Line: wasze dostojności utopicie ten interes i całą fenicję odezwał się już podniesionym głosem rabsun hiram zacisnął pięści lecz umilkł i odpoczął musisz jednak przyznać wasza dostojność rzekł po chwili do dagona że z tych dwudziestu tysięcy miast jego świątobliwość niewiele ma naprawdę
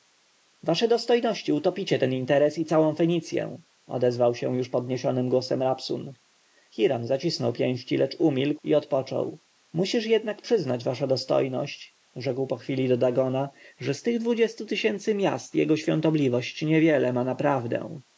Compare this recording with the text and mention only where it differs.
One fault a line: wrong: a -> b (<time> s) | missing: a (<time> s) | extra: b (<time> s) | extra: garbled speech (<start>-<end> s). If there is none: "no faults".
no faults